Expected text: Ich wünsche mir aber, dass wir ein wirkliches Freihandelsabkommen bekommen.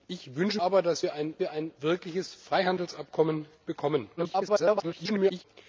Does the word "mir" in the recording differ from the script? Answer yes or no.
yes